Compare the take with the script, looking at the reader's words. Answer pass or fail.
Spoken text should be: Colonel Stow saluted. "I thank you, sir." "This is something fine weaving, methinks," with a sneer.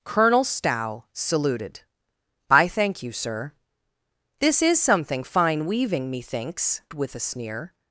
pass